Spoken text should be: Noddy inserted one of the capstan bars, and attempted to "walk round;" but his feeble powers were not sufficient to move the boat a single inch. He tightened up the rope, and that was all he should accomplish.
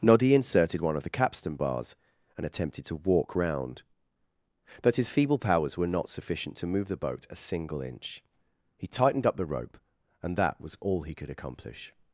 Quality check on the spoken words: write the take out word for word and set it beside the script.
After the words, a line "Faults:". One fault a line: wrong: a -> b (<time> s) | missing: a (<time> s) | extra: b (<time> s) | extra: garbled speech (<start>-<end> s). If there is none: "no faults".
Noddy inserted one of the capstan bars, and attempted to "walk round;" but his feeble powers were not sufficient to move the boat a single inch. He tightened up the rope, and that was all he could accomplish.
Faults:
wrong: should -> could (11.1 s)